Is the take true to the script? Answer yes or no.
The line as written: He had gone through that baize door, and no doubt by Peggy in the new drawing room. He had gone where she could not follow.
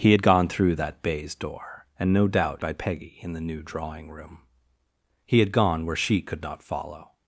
yes